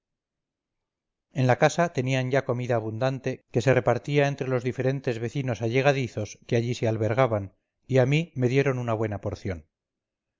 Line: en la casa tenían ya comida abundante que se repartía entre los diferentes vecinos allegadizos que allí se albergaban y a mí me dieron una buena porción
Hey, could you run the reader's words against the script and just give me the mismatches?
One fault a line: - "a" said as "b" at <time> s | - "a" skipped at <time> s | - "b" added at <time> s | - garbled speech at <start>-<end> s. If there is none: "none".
none